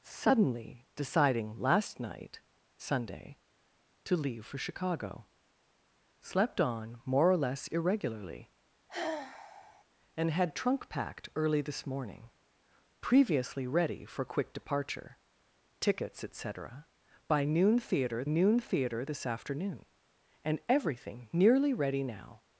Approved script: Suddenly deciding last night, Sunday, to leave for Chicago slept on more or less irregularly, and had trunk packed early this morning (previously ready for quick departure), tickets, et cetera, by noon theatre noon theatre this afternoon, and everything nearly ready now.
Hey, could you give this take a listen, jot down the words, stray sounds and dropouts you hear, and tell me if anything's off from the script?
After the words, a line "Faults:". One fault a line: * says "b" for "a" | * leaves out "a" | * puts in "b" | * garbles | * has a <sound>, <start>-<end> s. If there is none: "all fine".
Suddenly deciding last night, Sunday, to leave for Chicago slept on more or less irregularly, and had trunk packed early this morning (previously ready for quick departure), tickets, et cetera, by noon theatre noon theatre this afternoon, and everything nearly ready now.
Faults:
* has a sigh, 8.9-9.8 s